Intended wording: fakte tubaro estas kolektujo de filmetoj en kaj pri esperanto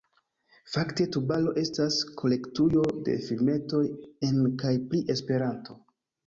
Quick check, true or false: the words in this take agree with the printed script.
true